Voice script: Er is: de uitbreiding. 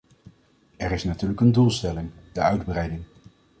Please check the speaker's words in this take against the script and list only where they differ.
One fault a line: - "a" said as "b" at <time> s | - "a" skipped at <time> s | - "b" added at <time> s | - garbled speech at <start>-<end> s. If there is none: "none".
- "natuurlijk een doelstelling" added at 1.0 s